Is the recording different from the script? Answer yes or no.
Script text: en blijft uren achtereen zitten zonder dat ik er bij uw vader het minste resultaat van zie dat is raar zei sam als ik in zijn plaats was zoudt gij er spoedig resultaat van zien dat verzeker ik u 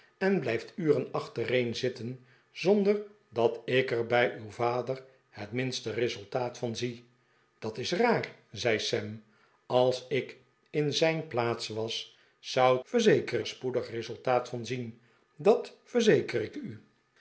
yes